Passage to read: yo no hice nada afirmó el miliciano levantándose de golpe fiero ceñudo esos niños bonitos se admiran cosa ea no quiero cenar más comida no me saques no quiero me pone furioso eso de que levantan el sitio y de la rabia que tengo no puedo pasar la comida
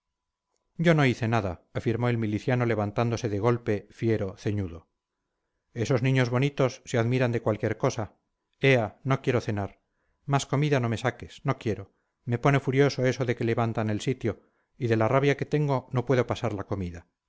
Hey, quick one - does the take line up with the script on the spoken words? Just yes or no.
no